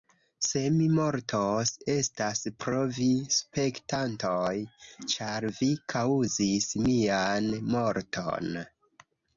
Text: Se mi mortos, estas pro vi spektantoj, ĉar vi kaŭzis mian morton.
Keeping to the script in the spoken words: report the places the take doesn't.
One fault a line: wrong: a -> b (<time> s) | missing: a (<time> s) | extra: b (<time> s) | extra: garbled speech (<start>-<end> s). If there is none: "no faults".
no faults